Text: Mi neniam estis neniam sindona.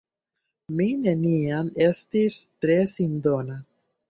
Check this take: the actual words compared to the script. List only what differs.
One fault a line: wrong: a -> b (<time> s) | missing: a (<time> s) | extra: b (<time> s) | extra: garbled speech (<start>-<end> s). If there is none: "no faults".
wrong: neniam -> tre (2.7 s)